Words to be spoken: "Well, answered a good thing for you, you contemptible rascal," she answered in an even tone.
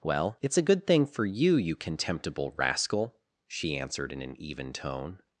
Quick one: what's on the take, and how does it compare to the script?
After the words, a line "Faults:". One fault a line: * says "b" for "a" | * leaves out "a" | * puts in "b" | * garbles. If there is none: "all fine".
"Well, it's a good thing for you, you contemptible rascal," she answered in an even tone.
Faults:
* says "it's" for "answered"